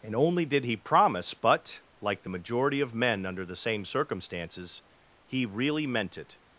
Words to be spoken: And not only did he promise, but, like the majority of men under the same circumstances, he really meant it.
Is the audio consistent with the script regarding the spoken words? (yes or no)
no